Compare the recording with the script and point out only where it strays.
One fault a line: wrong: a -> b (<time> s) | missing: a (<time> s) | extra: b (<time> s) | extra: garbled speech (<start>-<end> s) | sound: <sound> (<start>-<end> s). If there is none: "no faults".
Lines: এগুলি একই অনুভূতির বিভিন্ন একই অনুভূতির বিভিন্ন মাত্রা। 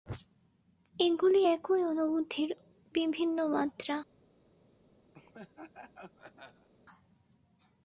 missing: একই অনুভূতির বিভিন্ন (3.4 s)
sound: laugh (5.1-6.7 s)